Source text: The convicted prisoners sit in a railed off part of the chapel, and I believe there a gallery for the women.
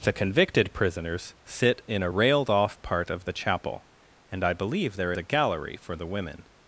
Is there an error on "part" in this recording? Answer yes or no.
no